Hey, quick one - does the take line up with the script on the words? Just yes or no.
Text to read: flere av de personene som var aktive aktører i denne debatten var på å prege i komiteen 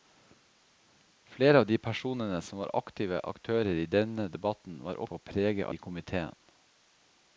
yes